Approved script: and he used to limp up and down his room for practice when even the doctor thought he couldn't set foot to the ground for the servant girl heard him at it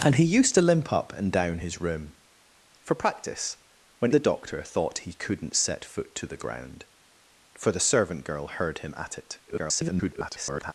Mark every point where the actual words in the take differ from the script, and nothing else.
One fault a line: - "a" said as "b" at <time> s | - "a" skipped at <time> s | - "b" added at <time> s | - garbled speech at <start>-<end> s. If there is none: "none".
- "even" skipped at 4.1 s
- garbled speech at 9.5-10.7 s